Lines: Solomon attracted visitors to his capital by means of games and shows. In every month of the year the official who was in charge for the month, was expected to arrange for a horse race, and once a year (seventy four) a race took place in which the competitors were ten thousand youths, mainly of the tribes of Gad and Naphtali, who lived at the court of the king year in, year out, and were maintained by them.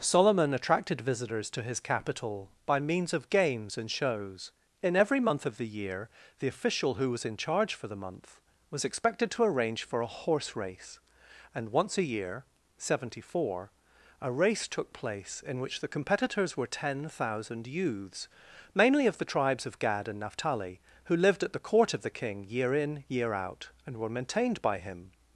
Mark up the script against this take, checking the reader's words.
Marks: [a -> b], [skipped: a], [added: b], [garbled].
Solomon attracted visitors to his capital by means of games and shows. In every month of the year the official who was in charge for the month, was expected to arrange for a horse race, and once a year (seventy four) a race took place in which the competitors were ten thousand youths, mainly of the tribes of Gad and Naphtali, who lived at the court of the king year in, year out, and were maintained by [them. -> him]